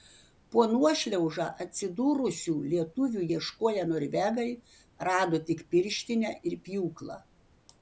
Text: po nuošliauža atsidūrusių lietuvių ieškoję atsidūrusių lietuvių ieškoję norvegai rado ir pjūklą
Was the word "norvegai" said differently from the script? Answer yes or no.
yes